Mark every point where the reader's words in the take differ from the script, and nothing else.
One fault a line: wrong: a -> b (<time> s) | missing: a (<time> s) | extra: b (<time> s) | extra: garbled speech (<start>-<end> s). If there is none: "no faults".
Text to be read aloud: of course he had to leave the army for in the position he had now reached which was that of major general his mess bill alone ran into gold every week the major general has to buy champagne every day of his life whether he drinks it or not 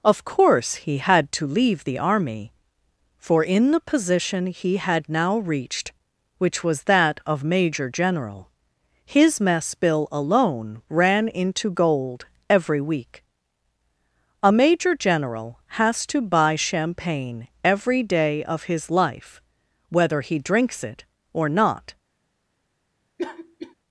wrong: the -> a (14.4 s)